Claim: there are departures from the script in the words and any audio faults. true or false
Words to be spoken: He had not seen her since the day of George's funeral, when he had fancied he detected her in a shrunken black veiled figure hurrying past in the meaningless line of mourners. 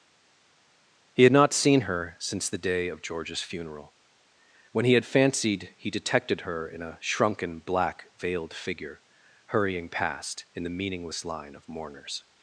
false